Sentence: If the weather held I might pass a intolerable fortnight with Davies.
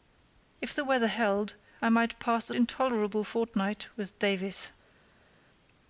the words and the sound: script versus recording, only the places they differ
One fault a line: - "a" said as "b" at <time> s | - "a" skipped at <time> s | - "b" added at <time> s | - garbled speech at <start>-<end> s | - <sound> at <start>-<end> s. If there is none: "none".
none